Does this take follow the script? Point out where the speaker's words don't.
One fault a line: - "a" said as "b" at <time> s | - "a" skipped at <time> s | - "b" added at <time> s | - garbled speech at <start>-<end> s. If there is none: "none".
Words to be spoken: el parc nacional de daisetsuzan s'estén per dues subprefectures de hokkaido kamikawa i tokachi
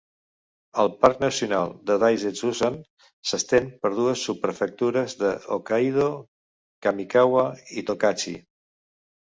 none